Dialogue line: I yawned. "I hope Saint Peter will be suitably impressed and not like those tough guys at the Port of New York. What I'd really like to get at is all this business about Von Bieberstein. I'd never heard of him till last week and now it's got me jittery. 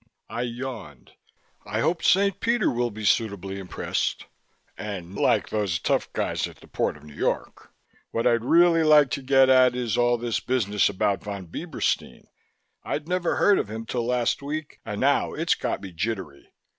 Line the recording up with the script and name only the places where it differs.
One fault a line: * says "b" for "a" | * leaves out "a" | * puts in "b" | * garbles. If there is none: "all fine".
* leaves out "not"